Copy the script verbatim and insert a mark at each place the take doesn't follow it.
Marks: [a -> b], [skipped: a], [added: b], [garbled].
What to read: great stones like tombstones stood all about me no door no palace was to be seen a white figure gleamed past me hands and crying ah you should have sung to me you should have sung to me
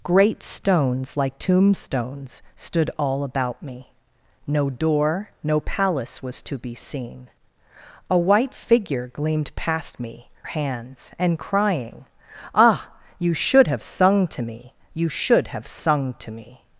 great stones like tombstones stood all about me no door no palace was to be seen a white figure gleamed past me hands and crying ah you should have sung to me you should have sung to me